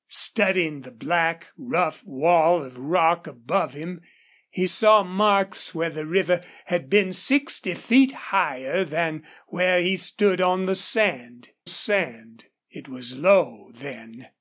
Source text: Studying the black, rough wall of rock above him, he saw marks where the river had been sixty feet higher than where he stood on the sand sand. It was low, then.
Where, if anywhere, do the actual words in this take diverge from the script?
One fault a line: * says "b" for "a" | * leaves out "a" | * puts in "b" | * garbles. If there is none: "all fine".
all fine